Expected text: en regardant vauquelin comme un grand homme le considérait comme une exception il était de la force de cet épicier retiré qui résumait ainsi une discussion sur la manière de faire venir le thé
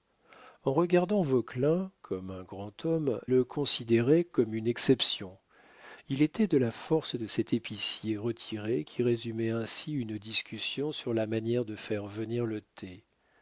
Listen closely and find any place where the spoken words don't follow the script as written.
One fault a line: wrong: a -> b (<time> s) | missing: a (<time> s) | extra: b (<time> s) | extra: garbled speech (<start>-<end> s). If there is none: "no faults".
no faults